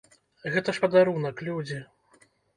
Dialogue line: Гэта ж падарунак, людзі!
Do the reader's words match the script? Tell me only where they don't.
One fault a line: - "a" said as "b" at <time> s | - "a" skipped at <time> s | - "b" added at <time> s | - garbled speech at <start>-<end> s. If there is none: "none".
none